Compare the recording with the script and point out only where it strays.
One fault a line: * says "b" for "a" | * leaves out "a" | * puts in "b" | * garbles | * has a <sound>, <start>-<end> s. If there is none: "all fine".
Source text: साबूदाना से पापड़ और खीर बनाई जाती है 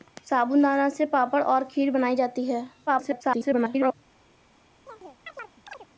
* garbles
* has a chirp, 4.9-5.9 s